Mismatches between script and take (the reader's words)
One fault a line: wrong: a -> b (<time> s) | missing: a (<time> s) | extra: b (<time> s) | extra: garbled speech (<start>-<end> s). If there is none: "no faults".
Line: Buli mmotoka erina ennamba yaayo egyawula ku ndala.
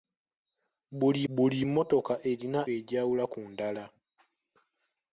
extra: buli (1.4 s)
missing: ennamba yaayo (2.6 s)